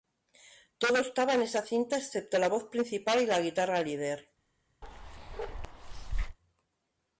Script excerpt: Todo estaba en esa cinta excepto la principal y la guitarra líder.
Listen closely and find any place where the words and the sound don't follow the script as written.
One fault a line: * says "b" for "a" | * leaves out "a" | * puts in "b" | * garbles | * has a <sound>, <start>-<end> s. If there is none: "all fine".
* puts in "voz"
* has a bark, 4.8-6.4 s